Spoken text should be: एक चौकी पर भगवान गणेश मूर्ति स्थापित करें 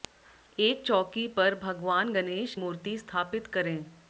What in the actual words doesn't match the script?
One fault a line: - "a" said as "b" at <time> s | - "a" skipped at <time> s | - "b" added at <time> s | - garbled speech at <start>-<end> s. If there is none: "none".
none